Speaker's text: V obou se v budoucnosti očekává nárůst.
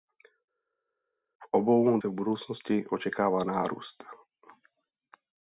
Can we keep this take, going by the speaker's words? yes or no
yes